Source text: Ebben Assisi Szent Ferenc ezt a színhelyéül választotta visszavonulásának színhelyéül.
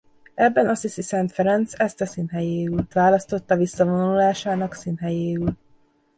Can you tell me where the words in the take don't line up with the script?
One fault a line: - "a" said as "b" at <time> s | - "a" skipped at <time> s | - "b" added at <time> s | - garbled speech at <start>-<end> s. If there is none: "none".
none